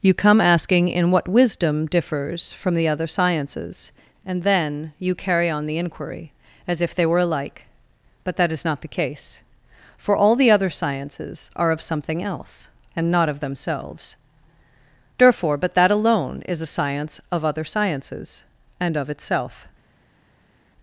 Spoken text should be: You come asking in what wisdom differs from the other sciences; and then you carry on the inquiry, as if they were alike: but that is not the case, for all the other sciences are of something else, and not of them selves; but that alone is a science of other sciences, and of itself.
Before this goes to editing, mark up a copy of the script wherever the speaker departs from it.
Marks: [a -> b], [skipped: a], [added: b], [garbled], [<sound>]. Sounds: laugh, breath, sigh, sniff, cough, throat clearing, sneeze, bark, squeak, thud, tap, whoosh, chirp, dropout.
You come asking in what wisdom differs from the other sciences; and then you carry on the inquiry, as if they were alike: but that is not the case, for all the other sciences are of something else, and not of [them selves; -> themselves therefore] but that alone is a science of other sciences, and of itself.